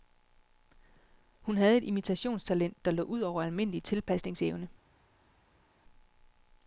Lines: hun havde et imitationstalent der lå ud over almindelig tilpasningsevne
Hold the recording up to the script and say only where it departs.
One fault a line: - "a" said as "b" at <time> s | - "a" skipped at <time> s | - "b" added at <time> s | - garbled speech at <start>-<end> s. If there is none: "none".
none